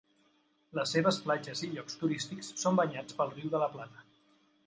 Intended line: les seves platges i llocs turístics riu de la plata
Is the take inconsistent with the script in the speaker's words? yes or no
yes